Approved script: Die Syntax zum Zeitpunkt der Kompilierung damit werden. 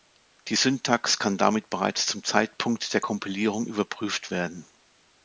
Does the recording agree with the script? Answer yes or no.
no